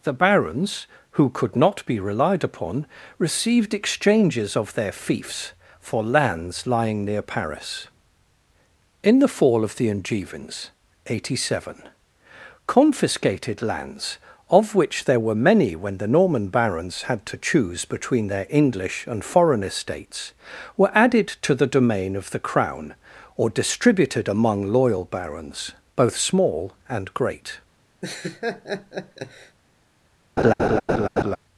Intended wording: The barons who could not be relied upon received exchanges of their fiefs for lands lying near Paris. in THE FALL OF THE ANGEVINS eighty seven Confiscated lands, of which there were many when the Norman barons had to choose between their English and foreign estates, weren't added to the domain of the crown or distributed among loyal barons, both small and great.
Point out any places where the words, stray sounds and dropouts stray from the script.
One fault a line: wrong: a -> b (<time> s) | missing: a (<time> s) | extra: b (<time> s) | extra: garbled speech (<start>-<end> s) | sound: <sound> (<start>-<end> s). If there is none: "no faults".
wrong: weren't -> were (20.8 s)
sound: laugh (28.0-29.6 s)
sound: laugh (30.4-31.4 s)